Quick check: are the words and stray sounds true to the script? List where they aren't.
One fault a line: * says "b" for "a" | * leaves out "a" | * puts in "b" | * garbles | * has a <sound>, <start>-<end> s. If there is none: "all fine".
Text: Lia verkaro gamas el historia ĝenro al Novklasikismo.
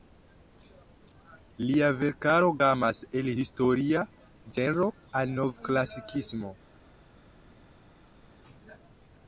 all fine